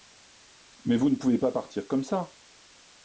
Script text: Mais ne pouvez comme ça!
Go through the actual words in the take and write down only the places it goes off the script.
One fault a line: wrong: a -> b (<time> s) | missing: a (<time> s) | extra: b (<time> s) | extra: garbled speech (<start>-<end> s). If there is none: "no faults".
extra: vous (1.0 s)
extra: pas partir (1.4 s)